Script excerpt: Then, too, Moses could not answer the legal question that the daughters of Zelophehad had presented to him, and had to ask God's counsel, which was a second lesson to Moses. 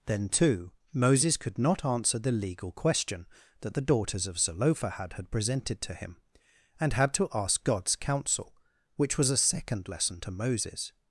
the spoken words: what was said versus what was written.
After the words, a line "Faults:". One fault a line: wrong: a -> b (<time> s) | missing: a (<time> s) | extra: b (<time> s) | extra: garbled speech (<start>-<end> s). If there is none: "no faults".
Then, too, Moses could not answer the legal question that the daughters of Zelophehad had presented to him, and had to ask God's counsel, which was a second lesson to Moses.
Faults:
no faults